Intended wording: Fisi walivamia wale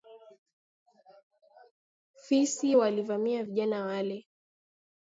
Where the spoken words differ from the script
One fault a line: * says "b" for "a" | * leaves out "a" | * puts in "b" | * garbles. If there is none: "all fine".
* puts in "vijana"